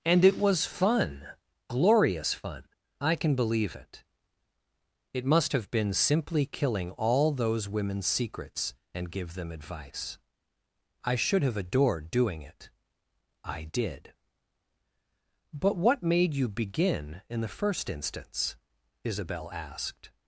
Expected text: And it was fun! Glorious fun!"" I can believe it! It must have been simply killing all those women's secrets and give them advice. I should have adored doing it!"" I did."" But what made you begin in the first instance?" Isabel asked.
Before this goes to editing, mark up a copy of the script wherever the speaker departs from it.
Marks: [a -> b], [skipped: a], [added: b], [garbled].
And it was fun! Glorious fun!"" I can believe it! It must have been simply killing all those women's secrets and give them advice. I should have adored doing it!"" I did."" But what made you begin in the first instance?" Isabel asked.